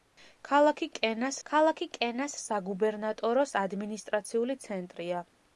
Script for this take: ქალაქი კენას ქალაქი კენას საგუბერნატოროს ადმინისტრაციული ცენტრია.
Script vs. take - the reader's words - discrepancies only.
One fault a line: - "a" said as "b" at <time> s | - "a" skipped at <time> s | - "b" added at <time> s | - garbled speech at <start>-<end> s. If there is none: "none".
none